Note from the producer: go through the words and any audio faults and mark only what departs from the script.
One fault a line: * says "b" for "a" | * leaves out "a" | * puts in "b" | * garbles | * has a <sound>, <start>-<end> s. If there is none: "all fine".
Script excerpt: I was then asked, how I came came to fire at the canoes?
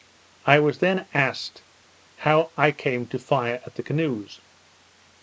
* leaves out "came"